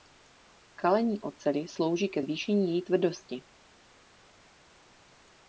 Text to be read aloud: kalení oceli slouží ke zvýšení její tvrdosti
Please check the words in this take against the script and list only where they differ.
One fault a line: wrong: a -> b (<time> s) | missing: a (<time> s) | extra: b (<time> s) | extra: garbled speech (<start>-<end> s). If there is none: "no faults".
no faults